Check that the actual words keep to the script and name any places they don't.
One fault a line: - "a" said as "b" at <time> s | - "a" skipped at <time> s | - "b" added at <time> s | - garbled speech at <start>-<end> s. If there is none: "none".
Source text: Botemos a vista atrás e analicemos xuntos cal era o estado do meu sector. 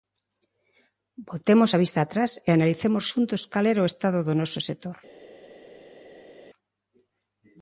- "meu" said as "noso" at 4.4 s